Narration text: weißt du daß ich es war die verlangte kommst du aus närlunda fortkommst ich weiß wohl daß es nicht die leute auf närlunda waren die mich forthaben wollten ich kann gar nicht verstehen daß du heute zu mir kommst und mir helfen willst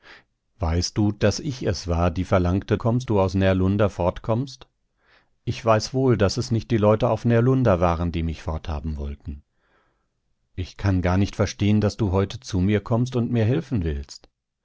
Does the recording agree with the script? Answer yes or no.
yes